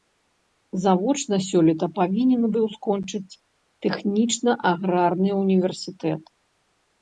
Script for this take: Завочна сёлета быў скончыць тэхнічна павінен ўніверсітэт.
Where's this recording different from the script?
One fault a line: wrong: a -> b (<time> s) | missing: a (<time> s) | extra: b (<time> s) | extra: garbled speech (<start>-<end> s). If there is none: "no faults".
extra: павінен (2.0 s)
wrong: павінен -> аграрны (4.7 s)